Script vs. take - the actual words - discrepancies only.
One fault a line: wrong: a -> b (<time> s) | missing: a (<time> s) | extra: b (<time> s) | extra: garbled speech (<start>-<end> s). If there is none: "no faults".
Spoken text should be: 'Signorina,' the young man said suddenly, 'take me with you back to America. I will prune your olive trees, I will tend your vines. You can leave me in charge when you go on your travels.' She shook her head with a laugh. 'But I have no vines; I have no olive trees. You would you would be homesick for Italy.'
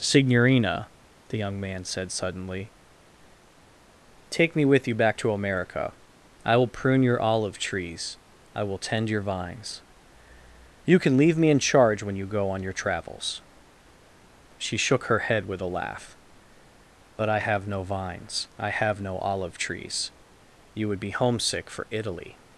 missing: you would (21.0 s)